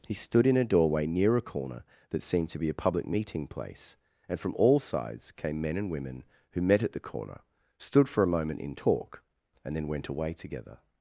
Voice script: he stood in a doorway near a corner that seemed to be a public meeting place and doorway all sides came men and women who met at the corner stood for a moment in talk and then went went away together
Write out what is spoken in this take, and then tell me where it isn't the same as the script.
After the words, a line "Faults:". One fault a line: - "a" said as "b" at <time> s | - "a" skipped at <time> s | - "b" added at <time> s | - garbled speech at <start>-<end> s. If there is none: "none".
he stood in a doorway near a corner that seemed to be a public meeting place and from all sides came men and women who met at the corner stood for a moment in talk and then went away together
Faults:
- "doorway" said as "from" at 4.4 s
- "went" skipped at 10.1 s